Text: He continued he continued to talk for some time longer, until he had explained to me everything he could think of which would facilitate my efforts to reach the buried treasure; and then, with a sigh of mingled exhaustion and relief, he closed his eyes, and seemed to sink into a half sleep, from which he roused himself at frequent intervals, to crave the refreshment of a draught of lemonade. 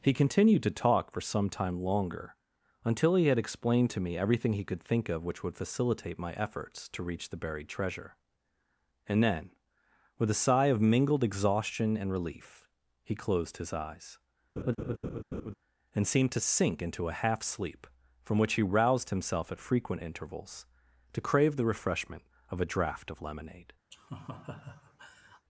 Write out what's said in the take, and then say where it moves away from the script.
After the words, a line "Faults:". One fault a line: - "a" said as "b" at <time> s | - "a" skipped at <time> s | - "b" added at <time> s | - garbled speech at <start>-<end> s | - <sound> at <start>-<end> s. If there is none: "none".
He continued to talk for some time longer, until he had explained to me everything he could think of which would facilitate my efforts to reach the buried treasure; and then, with a sigh of mingled exhaustion and relief, he closed his eyes, and seemed to sink into a half sleep, from which he roused himself at frequent intervals, to crave the refreshment of a draught of lemonade.
Faults:
- "he continued" skipped at 0.6 s
- laugh at 14.6-15.5 s
- laugh at 23.9-25.5 s